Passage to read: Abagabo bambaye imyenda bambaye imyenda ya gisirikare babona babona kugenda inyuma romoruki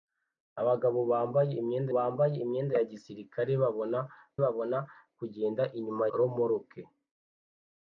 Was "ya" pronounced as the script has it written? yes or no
yes